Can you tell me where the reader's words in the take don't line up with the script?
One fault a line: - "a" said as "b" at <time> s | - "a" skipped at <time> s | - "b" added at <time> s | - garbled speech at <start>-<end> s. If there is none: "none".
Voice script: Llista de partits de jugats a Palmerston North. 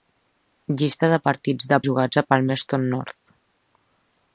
none